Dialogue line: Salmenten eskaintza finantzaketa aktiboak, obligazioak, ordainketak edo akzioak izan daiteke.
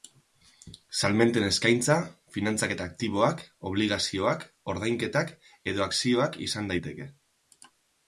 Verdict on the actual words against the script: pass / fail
pass